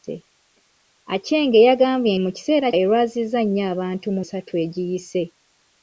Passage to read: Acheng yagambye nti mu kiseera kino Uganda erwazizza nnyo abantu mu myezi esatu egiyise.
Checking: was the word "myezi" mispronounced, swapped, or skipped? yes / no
yes